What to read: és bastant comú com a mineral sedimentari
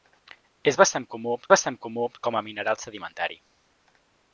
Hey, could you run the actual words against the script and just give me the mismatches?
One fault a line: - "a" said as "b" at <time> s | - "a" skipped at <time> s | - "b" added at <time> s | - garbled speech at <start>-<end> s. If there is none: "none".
- "bastant comú" added at 1.5 s